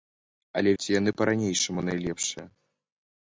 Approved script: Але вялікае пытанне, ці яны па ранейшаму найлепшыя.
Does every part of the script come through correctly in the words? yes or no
no